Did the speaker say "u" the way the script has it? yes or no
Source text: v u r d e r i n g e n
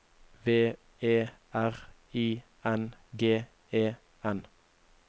no